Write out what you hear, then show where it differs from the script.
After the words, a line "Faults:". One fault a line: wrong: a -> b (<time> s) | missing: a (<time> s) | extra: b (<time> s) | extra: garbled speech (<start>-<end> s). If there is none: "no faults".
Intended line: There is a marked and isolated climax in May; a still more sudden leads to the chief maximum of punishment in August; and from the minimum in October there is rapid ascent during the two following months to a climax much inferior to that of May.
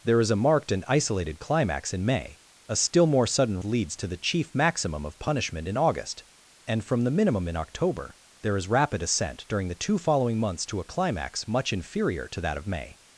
There is a marked and isolated climax in May; a still more sudden leads to the chief maximum of punishment in August; and from the minimum in October there is rapid ascent during the two following months to a climax much inferior to that of May.
Faults:
no faults